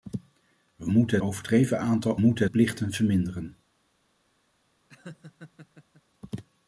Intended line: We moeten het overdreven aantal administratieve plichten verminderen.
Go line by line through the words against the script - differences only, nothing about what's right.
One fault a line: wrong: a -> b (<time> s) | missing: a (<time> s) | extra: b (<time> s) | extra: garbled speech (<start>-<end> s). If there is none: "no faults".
missing: het (1.2 s)
wrong: administratieve -> moeten (2.2 s)